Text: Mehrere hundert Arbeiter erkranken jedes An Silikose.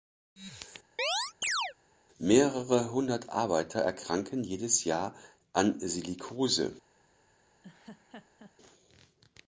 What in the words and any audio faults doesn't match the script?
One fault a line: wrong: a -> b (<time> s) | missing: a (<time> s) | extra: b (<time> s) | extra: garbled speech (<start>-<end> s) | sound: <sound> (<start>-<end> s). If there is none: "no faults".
sound: chirp (1.0-1.7 s)
extra: Jahr (4.8 s)
sound: laugh (7.6-8.5 s)